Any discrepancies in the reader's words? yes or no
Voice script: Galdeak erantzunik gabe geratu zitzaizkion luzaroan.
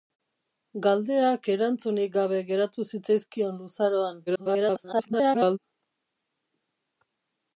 yes